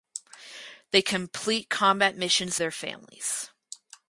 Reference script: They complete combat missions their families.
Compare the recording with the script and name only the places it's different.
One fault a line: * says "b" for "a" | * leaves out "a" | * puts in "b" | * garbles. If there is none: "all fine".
all fine